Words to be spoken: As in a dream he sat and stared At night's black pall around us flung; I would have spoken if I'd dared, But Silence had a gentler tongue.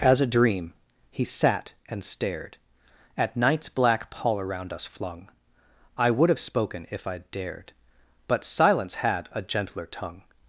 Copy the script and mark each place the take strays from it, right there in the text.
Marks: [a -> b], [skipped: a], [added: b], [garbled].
As [skipped: in] a dream he sat and stared At night's black pall around us flung; I would have spoken if I'd dared, But Silence had a gentler tongue.